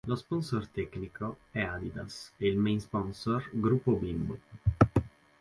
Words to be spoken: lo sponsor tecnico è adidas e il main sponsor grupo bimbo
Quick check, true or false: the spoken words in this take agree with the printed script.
true